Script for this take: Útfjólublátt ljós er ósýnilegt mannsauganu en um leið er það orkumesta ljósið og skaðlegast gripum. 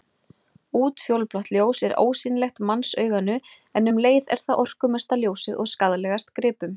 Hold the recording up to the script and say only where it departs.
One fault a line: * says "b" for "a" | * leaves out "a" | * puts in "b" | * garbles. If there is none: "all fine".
all fine